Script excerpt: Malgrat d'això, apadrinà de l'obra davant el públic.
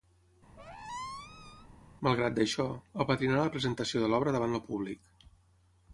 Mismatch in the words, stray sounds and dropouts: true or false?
true